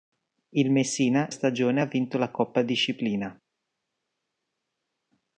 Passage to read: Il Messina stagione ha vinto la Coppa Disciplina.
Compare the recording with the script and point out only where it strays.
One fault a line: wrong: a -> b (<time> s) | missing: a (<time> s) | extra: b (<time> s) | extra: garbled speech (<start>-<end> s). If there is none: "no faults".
no faults